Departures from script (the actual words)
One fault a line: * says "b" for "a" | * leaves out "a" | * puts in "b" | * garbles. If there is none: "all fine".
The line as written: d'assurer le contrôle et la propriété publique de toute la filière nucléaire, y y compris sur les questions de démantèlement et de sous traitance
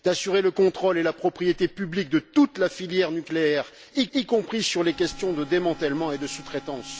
all fine